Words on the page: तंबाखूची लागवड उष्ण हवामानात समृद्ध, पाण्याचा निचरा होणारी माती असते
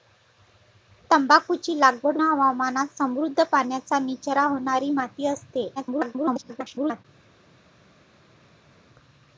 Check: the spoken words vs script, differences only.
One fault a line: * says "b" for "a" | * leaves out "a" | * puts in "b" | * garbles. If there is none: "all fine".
* leaves out "उष्ण"
* garbles